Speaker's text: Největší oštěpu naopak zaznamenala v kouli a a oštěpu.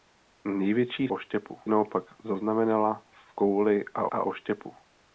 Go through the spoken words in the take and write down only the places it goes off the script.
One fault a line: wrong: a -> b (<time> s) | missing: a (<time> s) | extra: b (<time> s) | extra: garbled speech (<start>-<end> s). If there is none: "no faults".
no faults